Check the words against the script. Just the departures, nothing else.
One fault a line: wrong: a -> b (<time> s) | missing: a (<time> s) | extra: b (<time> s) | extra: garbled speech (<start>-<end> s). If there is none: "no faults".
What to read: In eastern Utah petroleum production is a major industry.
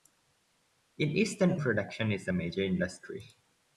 missing: Utah petroleum (1.6 s)